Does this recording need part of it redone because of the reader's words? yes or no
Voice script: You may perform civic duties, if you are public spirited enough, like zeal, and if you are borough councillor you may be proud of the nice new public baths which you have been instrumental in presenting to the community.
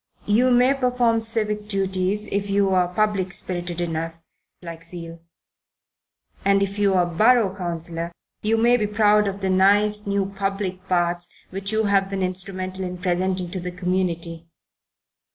no